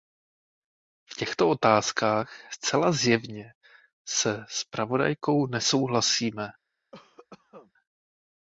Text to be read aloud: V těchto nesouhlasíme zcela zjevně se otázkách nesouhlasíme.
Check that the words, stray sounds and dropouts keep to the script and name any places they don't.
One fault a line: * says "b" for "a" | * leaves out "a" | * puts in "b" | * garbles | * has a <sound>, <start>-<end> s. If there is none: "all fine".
* says "otázkách" for "nesouhlasíme"
* says "zpravodajkou" for "otázkách"
* has a cough, 6.9-7.7 s